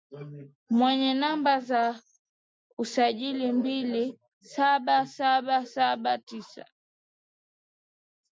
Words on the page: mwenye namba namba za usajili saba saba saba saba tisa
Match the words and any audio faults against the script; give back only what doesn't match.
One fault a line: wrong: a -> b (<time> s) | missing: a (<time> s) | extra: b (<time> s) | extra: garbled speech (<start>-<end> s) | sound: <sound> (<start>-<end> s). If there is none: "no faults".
missing: namba (1.6 s)
wrong: saba -> mbili (3.5 s)